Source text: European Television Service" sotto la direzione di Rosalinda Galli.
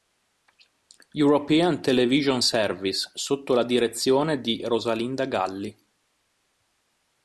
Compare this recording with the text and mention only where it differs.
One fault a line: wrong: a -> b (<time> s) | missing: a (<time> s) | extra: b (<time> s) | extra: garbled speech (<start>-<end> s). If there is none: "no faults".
no faults